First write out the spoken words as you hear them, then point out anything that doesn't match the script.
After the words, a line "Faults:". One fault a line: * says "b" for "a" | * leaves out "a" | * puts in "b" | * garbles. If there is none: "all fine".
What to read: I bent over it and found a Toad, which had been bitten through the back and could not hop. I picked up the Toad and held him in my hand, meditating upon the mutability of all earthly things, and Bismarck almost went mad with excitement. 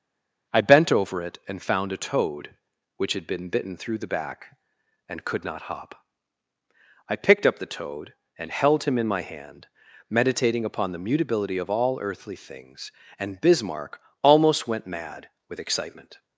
I bent over it and found a Toad, which had been bitten through the back and could not hop. I picked up the Toad and held him in my hand, meditating upon the mutability of all earthly things, and Bismarck almost went mad with excitement.
Faults:
all fine